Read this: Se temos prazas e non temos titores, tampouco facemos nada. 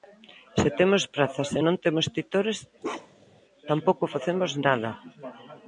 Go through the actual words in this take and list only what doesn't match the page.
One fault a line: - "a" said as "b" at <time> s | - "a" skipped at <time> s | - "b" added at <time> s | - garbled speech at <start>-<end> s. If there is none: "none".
none